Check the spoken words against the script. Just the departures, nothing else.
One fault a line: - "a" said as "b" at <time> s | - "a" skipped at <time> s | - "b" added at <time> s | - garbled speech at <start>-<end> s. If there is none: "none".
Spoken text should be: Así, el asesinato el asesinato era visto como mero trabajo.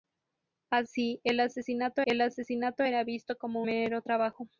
none